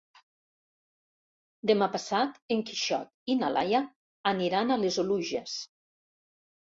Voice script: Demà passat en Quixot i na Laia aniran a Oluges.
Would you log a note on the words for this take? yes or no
yes